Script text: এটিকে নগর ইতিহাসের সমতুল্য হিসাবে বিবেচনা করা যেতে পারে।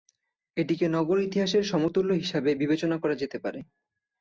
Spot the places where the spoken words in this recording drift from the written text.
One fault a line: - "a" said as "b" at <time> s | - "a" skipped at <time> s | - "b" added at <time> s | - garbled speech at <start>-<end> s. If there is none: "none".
none